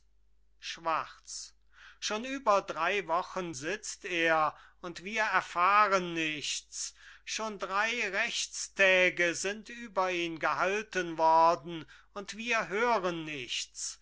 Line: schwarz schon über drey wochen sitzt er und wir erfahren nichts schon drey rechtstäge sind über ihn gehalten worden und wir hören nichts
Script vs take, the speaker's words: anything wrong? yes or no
no